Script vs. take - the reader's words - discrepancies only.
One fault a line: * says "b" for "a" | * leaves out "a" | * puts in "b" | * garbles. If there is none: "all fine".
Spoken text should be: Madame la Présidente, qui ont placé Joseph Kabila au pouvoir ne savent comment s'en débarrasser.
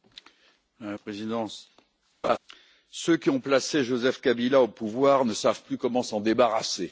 * puts in "ceux"
* puts in "plus"